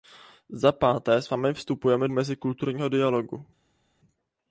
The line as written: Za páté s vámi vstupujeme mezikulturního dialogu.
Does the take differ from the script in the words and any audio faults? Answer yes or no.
no